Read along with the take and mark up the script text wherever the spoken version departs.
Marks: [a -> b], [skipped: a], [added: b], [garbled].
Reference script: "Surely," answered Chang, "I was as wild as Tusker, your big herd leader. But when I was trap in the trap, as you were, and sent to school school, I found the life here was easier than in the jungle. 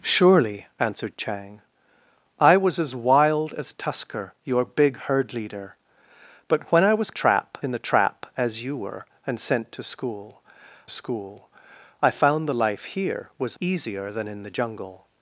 "Surely," answered Chang, "I was as wild as Tusker, your big herd leader. But when I was trap in the trap, as you were, and sent to school school, I found the life here was easier than in the jungle.